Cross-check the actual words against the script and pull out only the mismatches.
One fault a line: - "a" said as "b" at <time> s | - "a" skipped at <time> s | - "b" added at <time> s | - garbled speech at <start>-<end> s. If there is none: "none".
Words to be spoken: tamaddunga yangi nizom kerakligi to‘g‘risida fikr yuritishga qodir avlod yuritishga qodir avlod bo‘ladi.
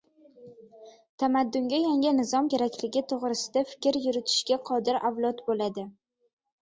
- "yuritishga qodir avlod" skipped at 5.4 s